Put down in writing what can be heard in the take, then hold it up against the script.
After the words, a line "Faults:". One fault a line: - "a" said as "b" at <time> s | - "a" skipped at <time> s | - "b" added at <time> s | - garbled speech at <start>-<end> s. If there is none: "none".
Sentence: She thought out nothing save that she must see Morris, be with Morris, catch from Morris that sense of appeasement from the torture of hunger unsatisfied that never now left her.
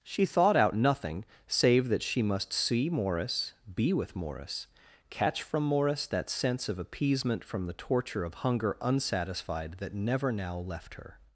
She thought out nothing save that she must see Morris, be with Morris, catch from Morris that sense of appeasement from the torture of hunger unsatisfied that never now left her.
Faults:
none